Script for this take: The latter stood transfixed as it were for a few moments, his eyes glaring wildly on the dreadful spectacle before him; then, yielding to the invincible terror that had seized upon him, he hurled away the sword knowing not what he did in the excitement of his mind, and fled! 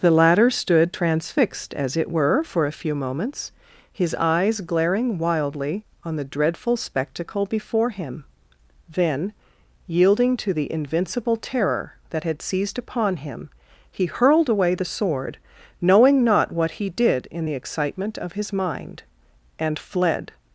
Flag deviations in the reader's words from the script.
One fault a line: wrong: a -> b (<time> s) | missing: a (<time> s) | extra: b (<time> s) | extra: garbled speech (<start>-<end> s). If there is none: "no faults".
no faults